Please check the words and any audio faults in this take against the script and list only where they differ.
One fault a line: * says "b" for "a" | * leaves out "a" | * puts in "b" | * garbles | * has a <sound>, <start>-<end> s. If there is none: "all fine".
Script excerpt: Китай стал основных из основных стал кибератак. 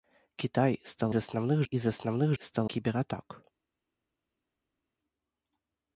all fine